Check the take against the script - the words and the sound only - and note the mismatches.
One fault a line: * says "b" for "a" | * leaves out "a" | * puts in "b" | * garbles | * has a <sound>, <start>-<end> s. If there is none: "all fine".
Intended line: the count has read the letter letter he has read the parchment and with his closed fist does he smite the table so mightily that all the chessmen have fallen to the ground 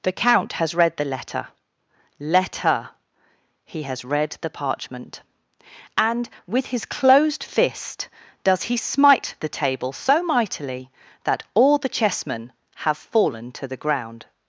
all fine